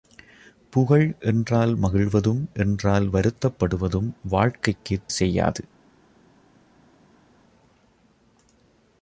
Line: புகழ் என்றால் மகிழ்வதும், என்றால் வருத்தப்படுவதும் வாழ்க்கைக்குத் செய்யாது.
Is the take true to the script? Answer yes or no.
yes